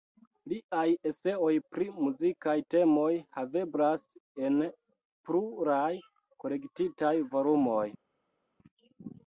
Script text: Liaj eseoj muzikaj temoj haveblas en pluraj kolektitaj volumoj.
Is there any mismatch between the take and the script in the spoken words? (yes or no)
yes